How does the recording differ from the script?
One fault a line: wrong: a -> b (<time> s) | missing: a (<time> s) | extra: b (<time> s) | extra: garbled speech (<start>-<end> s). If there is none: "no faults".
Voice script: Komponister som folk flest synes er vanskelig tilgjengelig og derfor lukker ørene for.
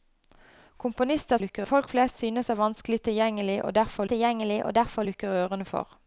wrong: som -> lukker (1.4 s)
extra: tilgjengelig og derfor (4.1 s)